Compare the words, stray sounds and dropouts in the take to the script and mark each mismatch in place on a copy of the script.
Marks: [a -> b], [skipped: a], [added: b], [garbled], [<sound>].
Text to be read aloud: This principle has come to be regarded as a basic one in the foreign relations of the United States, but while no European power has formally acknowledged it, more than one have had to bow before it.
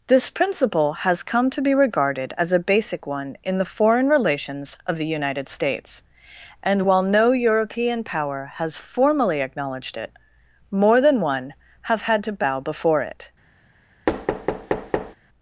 This principle has come to be regarded as a basic one in the foreign relations of the United States, [but -> and] while no European power has formally acknowledged it, more than one have had to bow before it. [thud]